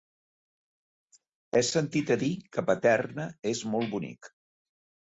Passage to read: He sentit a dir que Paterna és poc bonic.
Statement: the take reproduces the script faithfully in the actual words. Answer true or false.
false